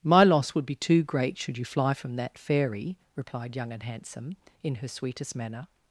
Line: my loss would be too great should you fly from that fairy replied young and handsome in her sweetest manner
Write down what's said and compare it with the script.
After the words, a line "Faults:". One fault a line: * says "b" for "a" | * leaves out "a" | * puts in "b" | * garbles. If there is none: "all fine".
my loss would be too great should you fly from that fairy replied young and handsome in her sweetest manner
Faults:
all fine